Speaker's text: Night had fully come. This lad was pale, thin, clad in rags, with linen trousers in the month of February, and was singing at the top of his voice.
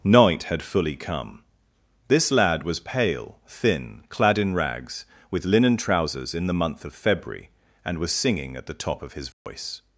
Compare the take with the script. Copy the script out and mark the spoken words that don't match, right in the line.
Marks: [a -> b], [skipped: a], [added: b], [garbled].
Night had fully come. This lad was pale, thin, clad in rags, with linen trousers in the month of February, and was singing at the top of his voice.